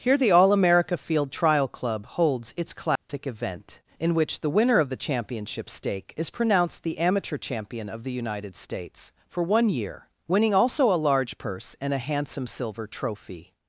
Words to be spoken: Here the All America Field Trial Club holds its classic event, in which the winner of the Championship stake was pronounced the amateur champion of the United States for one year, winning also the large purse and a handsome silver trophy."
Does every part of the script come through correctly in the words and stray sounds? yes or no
no